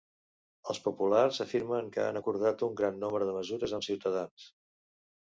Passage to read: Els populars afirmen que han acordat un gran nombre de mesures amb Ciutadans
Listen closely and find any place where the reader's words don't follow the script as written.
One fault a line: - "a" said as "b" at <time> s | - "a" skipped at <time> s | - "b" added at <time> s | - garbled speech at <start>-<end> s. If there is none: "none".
none